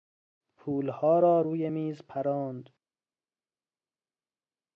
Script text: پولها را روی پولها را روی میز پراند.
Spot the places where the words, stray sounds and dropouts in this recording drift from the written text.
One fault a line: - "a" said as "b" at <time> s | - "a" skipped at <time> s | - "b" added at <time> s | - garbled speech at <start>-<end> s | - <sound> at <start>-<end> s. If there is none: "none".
- "پولها را روی" skipped at 1.7 s